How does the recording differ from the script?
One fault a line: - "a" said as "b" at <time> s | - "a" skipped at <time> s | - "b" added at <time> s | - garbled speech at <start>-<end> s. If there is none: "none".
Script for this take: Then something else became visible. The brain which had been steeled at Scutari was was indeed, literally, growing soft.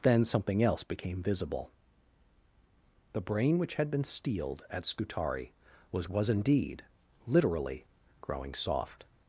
none